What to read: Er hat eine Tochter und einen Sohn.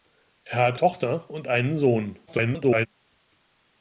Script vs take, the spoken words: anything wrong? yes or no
yes